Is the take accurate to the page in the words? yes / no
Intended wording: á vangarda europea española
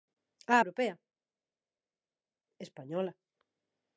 no